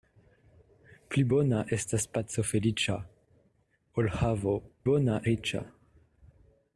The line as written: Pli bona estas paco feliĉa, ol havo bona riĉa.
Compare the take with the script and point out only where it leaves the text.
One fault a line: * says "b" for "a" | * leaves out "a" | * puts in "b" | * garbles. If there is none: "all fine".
all fine